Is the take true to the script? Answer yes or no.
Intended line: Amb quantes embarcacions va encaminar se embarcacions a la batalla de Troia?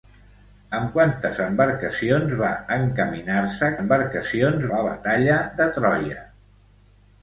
yes